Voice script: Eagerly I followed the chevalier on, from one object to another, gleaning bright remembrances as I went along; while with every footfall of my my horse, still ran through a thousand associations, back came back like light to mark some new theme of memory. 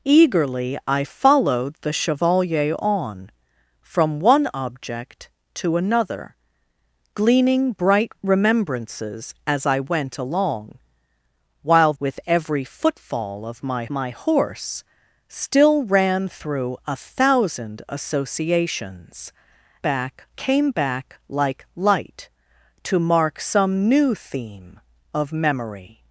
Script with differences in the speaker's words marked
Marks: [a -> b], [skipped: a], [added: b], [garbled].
Eagerly I followed the chevalier on, from one object to another, gleaning bright remembrances as I went along; while with every footfall of my my horse, still ran through a thousand associations, back came back like light to mark some new theme of memory.